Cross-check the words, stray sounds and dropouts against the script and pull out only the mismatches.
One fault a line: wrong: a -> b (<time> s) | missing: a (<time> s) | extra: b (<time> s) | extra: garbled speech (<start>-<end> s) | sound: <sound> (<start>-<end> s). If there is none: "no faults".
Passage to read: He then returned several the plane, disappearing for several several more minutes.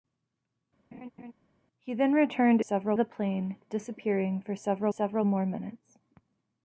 sound: laugh (0.9-1.3 s)